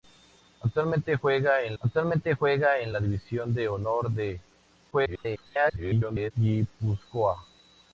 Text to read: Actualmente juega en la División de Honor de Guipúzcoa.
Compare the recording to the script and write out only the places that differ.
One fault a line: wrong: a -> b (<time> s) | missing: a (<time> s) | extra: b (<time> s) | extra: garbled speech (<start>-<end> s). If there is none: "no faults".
extra: actualmente juega en (1.8 s)
extra: garbled speech (4.9-6.3 s)